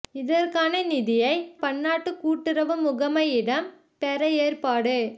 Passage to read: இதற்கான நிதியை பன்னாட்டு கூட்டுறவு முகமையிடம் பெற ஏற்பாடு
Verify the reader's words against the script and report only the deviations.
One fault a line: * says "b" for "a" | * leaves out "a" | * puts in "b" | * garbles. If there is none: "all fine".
all fine